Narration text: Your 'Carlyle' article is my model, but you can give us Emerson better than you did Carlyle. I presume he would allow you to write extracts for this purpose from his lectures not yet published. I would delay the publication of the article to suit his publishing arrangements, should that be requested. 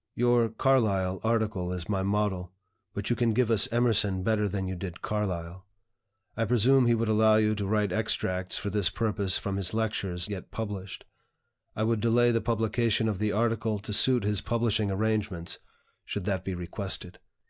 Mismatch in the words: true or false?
true